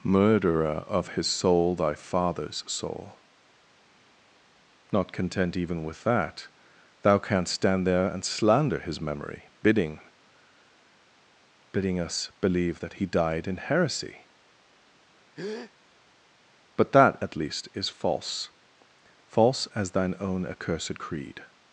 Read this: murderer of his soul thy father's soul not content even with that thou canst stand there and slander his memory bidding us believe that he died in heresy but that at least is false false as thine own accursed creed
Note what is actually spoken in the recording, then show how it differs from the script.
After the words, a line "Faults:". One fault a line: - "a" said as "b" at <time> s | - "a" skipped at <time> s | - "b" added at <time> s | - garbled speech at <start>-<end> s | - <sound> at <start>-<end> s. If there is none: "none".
murderer of his soul thy father's soul not content even with that thou canst stand there and slander his memory bidding bidding us believe that he died in heresy but that at least is false false as thine own accursed creed
Faults:
- "bidding" added at 11.7 s
- breath at 15.4-15.7 s